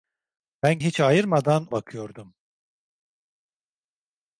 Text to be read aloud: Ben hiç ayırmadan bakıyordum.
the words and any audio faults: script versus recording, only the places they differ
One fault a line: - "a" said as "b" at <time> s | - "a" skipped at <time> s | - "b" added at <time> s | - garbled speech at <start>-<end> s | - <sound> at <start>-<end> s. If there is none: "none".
none